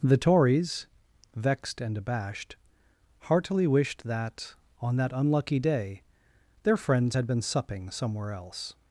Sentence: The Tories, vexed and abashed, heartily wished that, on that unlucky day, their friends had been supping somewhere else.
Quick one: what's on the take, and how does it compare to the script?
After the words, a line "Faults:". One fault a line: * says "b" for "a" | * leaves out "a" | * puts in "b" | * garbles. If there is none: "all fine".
The Tories, vexed and abashed, heartily wished that, on that unlucky day, their friends had been supping somewhere else.
Faults:
all fine